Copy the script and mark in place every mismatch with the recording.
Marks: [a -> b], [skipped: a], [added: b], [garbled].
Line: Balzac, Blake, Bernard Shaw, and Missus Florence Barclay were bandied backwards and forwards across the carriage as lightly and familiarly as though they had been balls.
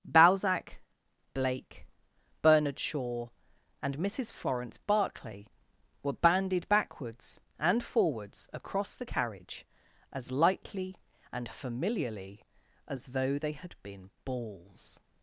Balzac, Blake, Bernard Shaw, and Missus Florence Barclay were bandied backwards and forwards across the carriage as lightly and familiarly as though they had been balls.